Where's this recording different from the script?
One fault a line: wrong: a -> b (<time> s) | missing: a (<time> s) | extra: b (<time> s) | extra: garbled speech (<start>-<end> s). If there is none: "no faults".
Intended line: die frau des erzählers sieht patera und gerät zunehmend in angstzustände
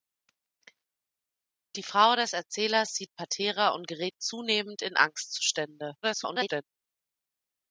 extra: garbled speech (6.0-6.6 s)